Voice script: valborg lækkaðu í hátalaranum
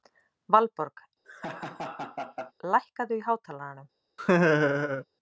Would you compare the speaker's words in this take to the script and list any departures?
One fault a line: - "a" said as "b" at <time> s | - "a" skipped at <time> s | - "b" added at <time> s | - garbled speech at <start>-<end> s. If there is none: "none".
none